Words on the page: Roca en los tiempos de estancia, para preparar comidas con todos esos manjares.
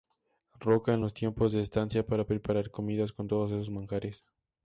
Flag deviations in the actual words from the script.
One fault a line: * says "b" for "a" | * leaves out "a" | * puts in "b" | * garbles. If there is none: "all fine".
all fine